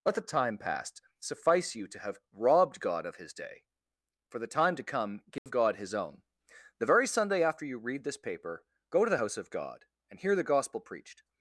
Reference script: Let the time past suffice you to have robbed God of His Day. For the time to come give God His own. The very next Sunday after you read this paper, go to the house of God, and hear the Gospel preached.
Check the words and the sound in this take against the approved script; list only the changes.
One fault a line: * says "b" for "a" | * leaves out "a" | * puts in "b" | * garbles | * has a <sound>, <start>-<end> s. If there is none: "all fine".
* has a dropout, 5.4-5.5 s
* leaves out "next"